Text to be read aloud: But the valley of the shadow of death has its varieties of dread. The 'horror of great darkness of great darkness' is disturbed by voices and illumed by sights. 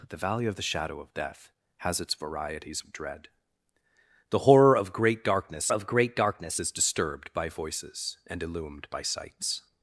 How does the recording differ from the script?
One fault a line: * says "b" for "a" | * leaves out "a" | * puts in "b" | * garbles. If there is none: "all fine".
all fine